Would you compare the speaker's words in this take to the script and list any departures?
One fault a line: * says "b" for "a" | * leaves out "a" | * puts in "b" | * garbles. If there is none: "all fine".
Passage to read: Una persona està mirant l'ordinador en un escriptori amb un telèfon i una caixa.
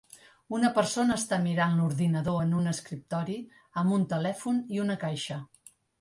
all fine